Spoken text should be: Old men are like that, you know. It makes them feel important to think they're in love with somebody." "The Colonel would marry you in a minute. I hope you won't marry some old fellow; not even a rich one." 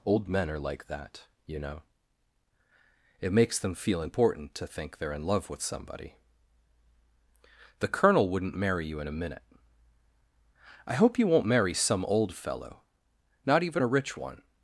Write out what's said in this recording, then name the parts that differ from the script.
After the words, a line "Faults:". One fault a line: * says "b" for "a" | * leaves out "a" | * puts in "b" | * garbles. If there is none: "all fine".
Old men are like that, you know. It makes them feel important to think they're in love with somebody." "The Colonel wouldn't marry you in a minute. I hope you won't marry some old fellow; not even a rich one."
Faults:
* says "wouldn't" for "would"